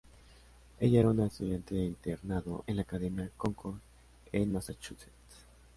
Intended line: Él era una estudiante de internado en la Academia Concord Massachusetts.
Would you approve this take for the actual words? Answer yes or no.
no